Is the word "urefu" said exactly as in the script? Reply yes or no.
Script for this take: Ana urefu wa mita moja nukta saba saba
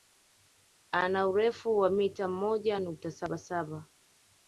yes